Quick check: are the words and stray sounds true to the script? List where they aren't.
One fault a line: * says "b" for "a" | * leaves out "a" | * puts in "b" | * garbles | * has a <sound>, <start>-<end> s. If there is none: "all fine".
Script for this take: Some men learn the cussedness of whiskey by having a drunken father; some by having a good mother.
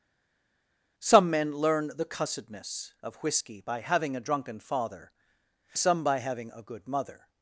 all fine